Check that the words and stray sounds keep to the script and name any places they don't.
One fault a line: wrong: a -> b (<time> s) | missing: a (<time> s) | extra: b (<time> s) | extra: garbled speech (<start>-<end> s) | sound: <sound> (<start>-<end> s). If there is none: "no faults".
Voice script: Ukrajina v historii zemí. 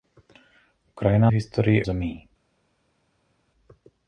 no faults